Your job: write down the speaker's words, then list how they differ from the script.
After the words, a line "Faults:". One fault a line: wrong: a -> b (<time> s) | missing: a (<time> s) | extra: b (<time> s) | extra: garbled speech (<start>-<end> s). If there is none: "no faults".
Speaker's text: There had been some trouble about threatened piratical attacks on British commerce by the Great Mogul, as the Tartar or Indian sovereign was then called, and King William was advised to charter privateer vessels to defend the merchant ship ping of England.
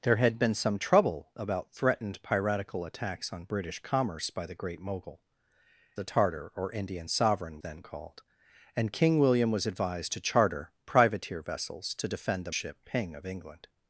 There had been some trouble about threatened piratical attacks on British commerce by the Great Mogul, the Tartar or Indian sovereign then called, and King William was advised to charter privateer vessels to defend the ship ping of England.
Faults:
missing: as (5.2 s)
missing: was (7.6 s)
missing: merchant (12.5 s)